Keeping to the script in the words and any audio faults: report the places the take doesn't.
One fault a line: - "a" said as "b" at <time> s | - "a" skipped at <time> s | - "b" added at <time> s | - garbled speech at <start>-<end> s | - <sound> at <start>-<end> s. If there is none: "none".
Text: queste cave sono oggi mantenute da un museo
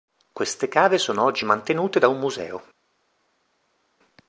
none